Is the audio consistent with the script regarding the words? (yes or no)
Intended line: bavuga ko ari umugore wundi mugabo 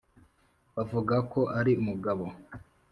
no